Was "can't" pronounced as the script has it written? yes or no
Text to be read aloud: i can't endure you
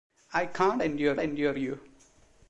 yes